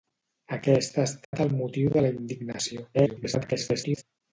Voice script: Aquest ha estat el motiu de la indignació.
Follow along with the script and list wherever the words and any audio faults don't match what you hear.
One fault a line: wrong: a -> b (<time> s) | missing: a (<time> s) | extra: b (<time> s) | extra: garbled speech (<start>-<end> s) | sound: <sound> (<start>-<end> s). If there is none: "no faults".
sound: dropout (1.2-1.3 s)
extra: garbled speech (2.9-4.0 s)